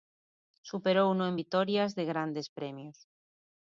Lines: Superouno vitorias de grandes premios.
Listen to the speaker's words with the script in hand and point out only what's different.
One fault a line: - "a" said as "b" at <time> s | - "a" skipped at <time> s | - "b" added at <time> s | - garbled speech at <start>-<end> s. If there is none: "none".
- "en" added at 1.3 s